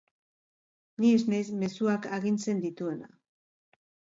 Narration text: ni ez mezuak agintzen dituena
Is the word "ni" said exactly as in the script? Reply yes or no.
yes